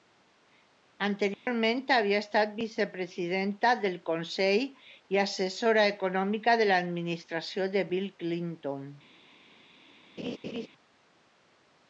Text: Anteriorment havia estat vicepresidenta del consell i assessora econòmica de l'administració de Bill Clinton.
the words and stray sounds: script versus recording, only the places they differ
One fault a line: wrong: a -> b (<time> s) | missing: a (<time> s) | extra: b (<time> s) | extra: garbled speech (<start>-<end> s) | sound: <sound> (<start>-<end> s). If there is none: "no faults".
sound: dropout (1.3-1.5 s)
sound: laugh (10.2-10.7 s)